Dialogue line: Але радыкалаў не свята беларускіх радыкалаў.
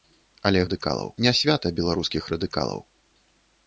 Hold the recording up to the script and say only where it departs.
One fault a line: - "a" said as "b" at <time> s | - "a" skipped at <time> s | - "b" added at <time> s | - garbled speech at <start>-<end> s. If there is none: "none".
none